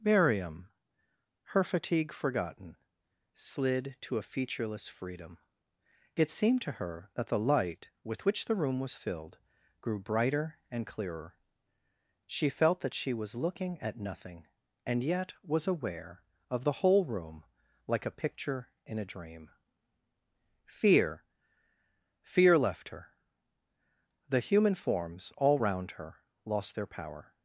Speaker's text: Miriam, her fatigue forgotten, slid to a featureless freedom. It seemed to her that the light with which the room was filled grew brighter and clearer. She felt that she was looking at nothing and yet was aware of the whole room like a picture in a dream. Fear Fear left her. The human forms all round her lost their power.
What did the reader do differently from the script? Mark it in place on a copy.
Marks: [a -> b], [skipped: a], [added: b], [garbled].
Miriam, her fatigue forgotten, slid to a featureless freedom. It seemed to her that the light with which the room was filled grew brighter and clearer. She felt that she was looking at nothing and yet was aware of the whole room like a picture in a dream. Fear Fear left her. The human forms all round her lost their power.